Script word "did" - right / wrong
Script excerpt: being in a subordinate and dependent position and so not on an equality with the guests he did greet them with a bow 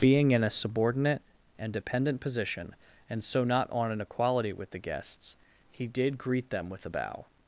right